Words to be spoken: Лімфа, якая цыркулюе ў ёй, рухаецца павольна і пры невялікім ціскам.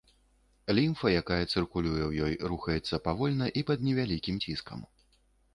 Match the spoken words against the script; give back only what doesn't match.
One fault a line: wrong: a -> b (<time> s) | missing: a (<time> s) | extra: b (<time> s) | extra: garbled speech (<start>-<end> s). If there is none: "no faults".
wrong: пры -> пад (3.7 s)